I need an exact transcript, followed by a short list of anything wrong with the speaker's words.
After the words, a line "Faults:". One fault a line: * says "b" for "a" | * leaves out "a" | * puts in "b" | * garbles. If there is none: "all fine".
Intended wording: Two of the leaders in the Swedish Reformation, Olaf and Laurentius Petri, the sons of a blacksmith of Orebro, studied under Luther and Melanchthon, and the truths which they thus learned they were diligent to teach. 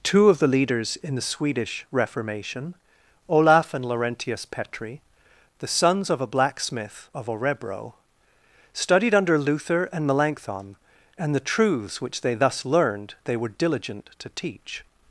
Two of the leaders in the Swedish Reformation, Olaf and Laurentius Petri, the sons of a blacksmith of Orebro, studied under Luther and Melanchthon, and the truths which they thus learned they were diligent to teach.
Faults:
all fine